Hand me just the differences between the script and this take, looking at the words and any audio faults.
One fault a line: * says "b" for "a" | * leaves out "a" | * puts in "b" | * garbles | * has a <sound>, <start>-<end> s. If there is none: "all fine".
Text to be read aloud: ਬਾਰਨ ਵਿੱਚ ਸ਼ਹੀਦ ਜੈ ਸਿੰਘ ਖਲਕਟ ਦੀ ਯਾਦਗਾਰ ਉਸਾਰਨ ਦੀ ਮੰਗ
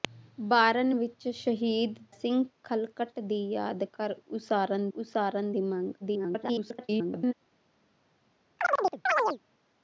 * leaves out "ਜੈ"
* puts in "ਉਸਾਰਨ"
* garbles
* has a chirp, 8.6-9.4 s